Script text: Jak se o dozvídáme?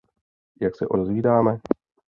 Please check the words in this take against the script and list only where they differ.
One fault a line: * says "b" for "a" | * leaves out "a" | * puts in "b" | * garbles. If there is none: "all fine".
all fine